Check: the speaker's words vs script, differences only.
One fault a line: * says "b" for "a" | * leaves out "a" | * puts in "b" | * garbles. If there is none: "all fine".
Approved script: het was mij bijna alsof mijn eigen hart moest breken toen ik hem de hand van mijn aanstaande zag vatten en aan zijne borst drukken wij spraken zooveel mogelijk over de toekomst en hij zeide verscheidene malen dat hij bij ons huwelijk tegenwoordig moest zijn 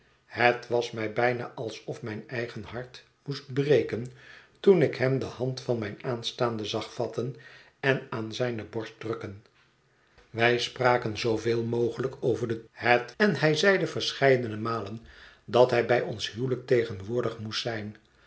* says "het" for "toekomst"